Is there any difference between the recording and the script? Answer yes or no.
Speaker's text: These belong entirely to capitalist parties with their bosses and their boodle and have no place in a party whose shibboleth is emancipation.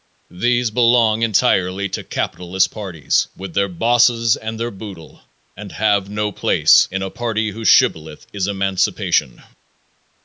no